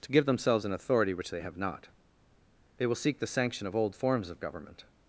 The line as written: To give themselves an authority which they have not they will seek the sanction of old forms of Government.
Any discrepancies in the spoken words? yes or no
no